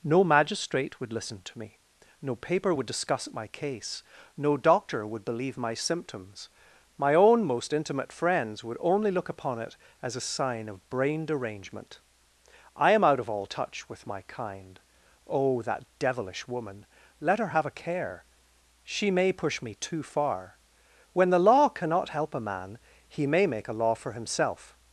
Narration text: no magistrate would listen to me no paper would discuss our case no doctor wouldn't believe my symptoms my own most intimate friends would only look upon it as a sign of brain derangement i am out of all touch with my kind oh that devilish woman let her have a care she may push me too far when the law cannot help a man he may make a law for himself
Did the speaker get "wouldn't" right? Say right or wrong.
wrong